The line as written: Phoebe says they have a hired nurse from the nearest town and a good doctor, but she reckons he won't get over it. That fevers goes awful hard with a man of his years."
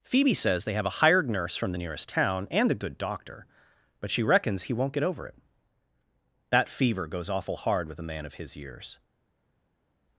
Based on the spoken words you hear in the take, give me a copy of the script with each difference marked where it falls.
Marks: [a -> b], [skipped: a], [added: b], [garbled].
Phoebe says they have a hired nurse from the nearest town and a good doctor, but she reckons he won't get over it. That [fevers -> fever] goes awful hard with a man of his years."